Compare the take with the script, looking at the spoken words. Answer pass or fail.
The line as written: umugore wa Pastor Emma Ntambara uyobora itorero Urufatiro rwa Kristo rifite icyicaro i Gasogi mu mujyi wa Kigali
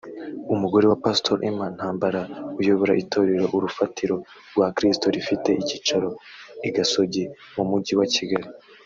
pass